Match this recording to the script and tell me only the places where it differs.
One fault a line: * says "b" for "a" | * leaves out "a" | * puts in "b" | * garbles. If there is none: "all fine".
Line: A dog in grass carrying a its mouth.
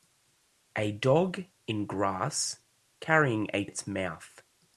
all fine